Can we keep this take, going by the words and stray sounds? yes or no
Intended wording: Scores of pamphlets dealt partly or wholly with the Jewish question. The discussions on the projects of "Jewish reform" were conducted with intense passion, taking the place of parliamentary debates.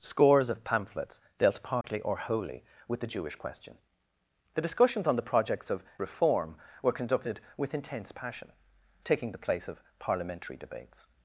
no